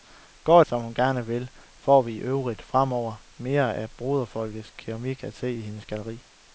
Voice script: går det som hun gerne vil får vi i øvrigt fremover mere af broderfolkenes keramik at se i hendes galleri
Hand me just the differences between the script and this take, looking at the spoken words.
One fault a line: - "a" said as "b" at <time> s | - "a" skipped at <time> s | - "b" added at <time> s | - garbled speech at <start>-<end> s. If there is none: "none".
- "det" skipped at 0.6 s